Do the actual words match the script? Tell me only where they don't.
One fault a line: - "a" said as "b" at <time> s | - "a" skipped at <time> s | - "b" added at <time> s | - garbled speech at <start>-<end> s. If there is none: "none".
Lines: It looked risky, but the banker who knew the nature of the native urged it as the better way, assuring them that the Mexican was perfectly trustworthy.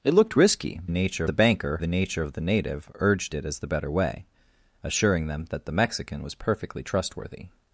- "but" said as "nature" at 0.9 s
- "who knew" skipped at 1.8 s